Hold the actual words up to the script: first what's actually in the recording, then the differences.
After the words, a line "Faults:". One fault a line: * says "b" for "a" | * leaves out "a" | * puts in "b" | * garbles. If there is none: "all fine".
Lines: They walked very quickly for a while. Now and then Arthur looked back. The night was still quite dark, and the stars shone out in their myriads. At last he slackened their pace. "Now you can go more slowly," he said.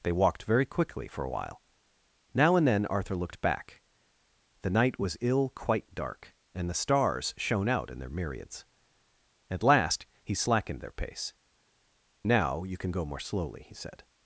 They walked very quickly for a while. Now and then Arthur looked back. The night was ill quite dark, and the stars shone out in their myriads. At last he slackened their pace. "Now you can go more slowly," he said.
Faults:
* says "ill" for "still"